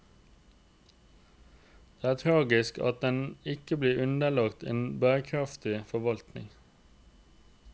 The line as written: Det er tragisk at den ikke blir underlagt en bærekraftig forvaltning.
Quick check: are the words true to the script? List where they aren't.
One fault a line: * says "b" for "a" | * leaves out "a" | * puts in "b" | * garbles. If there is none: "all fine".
all fine